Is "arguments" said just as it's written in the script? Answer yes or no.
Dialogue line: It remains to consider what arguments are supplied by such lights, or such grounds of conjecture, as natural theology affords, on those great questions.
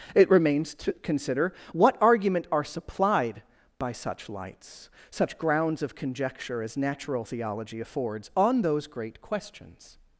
no